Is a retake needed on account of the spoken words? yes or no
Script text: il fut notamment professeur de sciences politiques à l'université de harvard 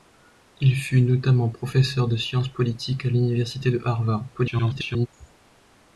yes